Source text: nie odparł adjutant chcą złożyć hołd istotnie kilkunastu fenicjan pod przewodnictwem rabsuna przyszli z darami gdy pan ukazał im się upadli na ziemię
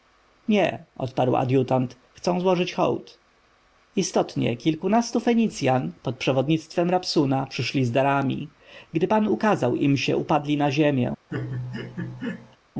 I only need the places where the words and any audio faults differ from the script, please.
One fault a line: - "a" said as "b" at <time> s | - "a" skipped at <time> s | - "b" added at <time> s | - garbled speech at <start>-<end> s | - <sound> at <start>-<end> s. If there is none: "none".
- laugh at 11.3-12.6 s